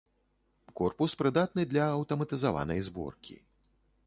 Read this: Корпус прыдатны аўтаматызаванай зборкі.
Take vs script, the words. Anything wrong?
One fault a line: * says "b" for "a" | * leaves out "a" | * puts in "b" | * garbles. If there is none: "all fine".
* puts in "для"